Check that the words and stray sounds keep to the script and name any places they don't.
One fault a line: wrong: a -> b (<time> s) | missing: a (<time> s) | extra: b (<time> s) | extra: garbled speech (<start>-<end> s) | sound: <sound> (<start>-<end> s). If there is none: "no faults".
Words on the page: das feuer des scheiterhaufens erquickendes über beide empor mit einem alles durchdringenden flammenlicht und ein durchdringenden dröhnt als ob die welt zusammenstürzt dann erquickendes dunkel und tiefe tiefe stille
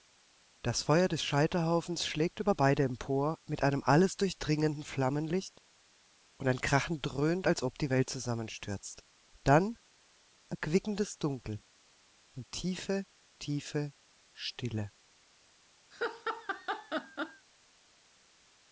wrong: erquickendes -> schlägt (2.1 s)
wrong: durchdringenden -> krachen (6.6 s)
sound: laugh (15.9-17.5 s)